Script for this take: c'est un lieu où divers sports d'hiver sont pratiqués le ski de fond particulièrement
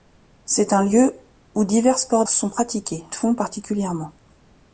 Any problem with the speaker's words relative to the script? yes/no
yes